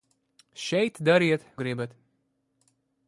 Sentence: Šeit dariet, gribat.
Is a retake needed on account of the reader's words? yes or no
no